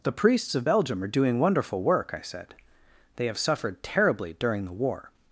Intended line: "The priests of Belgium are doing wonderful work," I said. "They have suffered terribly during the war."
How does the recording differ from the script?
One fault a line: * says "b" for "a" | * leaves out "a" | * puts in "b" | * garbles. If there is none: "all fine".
all fine